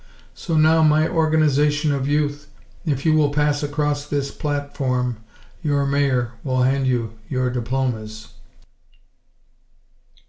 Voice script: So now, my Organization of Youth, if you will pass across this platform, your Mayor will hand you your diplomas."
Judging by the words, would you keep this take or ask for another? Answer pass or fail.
pass